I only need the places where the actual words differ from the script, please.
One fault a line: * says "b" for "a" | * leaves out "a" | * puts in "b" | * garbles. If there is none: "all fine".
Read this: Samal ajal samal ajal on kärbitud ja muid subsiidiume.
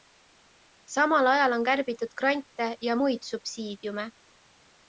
* leaves out "samal ajal"
* puts in "grante"